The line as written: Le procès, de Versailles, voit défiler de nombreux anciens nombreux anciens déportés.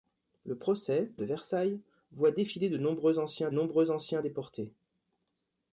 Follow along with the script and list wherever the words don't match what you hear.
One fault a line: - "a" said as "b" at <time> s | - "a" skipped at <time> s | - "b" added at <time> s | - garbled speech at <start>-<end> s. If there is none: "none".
none